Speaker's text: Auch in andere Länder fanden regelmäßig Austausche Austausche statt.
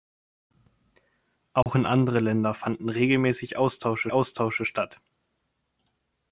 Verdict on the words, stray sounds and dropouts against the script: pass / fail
fail